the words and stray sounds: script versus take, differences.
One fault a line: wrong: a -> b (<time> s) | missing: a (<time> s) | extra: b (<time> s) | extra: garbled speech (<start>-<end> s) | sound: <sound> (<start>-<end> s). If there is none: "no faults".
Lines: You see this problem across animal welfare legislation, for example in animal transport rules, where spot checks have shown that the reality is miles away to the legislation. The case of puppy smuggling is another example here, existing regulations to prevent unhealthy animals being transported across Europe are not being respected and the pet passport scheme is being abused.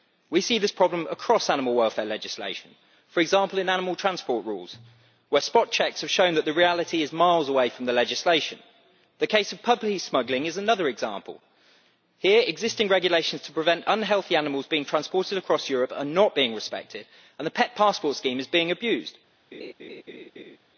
wrong: You -> We (0.3 s)
wrong: to -> from (7.7 s)
sound: laugh (19.5-20.6 s)